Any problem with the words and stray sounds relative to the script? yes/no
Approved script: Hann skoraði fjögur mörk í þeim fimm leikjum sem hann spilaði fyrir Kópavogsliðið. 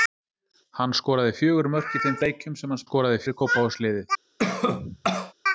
yes